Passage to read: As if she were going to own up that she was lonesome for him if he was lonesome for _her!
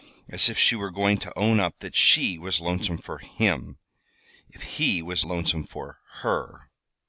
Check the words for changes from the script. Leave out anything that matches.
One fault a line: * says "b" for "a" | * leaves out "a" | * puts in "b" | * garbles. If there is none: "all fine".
all fine